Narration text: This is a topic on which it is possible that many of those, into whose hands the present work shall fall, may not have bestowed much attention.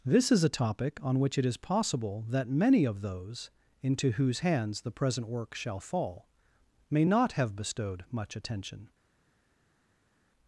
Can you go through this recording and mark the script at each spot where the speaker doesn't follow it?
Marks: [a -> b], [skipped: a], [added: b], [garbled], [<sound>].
This is a topic on which it is possible that many of those, into whose hands the present work shall fall, may not have bestowed much attention.